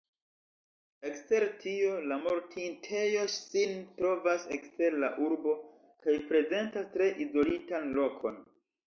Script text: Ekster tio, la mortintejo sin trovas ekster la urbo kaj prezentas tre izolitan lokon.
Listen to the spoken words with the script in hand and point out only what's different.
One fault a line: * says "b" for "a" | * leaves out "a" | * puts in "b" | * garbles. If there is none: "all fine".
all fine